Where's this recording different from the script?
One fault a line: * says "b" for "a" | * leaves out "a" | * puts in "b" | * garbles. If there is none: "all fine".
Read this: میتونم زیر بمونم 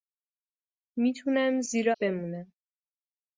all fine